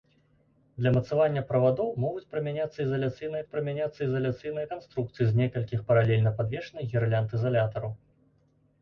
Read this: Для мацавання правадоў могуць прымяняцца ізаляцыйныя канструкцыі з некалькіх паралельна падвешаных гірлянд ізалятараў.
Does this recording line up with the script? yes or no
no